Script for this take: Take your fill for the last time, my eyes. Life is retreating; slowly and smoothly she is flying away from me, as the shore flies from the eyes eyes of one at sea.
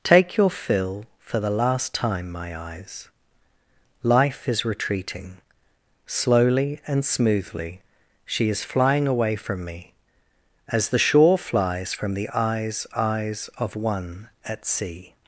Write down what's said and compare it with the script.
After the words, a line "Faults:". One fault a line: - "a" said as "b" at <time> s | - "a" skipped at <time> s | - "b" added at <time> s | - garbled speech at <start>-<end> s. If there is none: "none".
Take your fill for the last time, my eyes. Life is retreating; slowly and smoothly she is flying away from me, as the shore flies from the eyes eyes of one at sea.
Faults:
none